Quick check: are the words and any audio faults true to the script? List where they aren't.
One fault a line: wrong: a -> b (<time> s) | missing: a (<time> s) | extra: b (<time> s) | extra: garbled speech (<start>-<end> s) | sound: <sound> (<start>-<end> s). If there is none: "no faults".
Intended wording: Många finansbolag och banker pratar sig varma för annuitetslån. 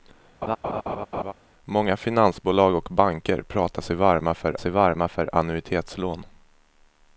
sound: laugh (0.4-1.3 s)
extra: sig varma för (4.6 s)